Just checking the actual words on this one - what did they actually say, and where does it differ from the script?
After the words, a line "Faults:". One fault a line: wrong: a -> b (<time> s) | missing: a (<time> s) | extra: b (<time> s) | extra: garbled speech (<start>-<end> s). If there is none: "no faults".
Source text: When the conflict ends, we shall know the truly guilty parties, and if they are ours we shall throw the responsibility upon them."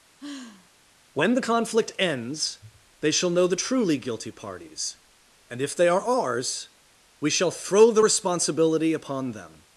When the conflict ends, they shall know the truly guilty parties, and if they are ours we shall throw the responsibility upon them."
Faults:
wrong: we -> they (3.0 s)